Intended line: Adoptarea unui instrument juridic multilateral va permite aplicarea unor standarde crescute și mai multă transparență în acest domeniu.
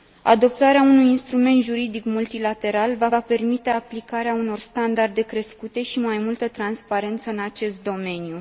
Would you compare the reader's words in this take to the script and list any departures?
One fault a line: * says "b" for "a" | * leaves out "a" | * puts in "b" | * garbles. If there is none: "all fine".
* puts in "va"